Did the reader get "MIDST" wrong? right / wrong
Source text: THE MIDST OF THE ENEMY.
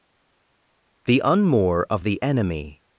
wrong